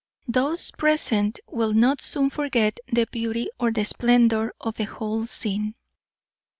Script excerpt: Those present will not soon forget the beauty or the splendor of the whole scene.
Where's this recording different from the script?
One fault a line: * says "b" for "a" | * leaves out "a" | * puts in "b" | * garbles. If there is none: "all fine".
all fine